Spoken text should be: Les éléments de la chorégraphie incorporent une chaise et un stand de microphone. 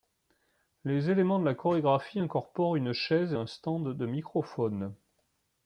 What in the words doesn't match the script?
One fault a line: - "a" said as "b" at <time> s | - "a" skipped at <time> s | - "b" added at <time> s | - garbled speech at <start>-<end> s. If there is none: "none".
none